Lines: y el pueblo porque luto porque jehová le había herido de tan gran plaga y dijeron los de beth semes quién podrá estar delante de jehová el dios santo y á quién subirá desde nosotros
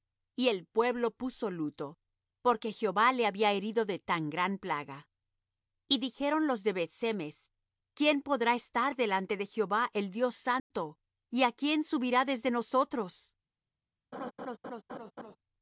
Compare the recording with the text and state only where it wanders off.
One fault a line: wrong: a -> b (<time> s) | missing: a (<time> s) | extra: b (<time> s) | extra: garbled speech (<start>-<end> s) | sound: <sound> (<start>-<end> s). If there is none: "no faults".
wrong: porque -> puso (1.1 s)
sound: dropout (10.6-10.7 s)
sound: laugh (14.1-15.4 s)